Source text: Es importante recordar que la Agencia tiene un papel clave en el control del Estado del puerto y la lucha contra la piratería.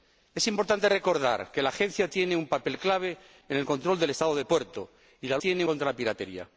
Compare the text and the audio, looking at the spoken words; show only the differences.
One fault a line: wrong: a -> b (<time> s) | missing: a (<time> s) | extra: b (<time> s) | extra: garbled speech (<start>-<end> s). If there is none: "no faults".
wrong: lucha -> tiene (5.4 s)